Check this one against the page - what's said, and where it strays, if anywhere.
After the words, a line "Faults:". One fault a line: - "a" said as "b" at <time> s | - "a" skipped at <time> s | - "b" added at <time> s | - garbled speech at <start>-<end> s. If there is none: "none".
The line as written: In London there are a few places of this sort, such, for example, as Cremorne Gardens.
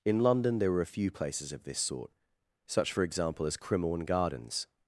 In London there were a few places of this sort, such, for example, as Cremorne Gardens.
Faults:
- "are" said as "were" at 0.7 s